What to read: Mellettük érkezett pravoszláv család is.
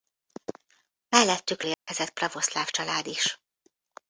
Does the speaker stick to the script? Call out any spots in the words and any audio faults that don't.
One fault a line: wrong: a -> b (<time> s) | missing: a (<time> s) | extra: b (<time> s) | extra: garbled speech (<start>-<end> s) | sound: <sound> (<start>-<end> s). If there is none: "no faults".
sound: dropout (1.7-1.9 s)